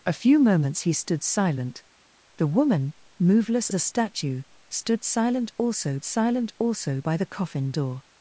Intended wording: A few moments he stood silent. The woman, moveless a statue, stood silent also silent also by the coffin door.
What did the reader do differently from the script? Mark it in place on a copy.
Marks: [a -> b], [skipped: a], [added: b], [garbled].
A few moments he stood silent. The woman, moveless a statue, stood silent also silent also by the coffin door.